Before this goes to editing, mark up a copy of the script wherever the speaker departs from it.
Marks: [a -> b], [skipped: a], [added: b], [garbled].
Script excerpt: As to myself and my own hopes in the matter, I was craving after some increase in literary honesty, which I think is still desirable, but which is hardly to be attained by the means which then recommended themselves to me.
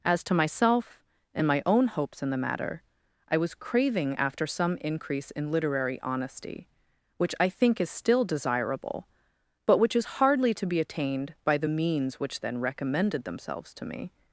As to myself and my own hopes in the matter, I was craving after some increase in literary honesty, which I think is still desirable, but which is hardly to be attained by the means which then recommended themselves to me.